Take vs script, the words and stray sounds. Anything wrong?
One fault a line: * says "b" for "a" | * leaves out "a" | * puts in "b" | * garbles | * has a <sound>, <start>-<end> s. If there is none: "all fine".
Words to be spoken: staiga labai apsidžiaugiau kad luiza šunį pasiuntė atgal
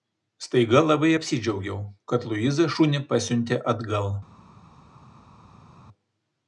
all fine